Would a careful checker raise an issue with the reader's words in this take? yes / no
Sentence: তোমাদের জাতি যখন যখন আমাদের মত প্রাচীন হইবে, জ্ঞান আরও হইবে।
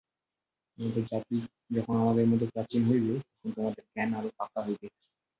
yes